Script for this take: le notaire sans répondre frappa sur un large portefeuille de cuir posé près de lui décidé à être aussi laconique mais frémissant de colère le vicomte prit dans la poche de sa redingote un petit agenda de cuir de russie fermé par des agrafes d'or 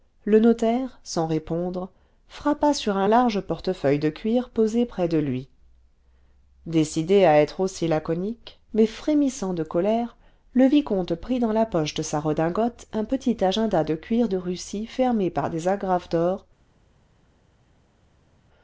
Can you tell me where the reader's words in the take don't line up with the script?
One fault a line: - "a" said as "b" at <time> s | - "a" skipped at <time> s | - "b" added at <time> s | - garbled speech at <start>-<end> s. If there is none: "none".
none